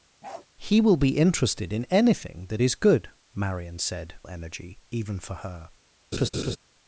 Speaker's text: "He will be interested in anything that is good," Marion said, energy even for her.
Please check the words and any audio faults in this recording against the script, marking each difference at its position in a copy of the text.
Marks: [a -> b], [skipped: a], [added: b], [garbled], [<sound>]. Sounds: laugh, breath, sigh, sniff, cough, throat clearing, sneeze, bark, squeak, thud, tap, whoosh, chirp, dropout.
[bark] "He will be interested in anything that is good," Marion said, energy even for her. [laugh]